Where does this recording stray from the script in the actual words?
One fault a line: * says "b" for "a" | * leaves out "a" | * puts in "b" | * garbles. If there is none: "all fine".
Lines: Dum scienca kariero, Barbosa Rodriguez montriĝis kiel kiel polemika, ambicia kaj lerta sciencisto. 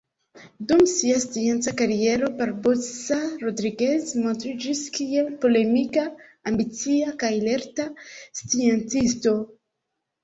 * puts in "sia"
* leaves out "kiel"